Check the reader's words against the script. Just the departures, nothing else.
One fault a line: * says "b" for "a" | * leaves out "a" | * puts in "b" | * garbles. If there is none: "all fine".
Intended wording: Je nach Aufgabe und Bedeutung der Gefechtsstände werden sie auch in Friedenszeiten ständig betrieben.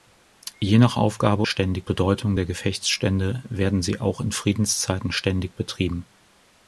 * says "ständig" for "und"